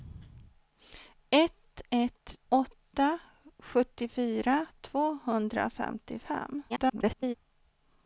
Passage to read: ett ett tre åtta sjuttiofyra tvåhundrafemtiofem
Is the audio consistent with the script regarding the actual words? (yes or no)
no